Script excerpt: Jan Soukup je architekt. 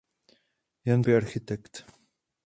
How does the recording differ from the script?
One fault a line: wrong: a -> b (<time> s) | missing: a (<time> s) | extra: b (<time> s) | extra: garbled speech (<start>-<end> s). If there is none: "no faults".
missing: Soukup (1.0 s)